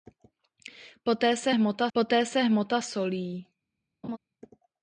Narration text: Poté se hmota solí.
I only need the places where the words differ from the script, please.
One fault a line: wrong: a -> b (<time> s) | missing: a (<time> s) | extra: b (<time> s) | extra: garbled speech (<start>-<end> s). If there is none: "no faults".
extra: poté se hmota (1.9 s)